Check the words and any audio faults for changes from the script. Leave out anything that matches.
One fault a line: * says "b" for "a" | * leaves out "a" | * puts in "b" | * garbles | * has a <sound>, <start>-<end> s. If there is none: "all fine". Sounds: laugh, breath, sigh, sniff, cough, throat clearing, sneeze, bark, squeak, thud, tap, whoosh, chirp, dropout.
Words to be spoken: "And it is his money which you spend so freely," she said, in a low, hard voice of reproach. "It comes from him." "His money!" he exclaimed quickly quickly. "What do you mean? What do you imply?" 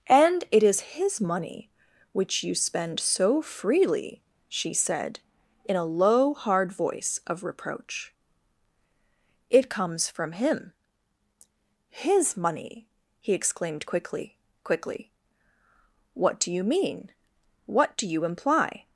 all fine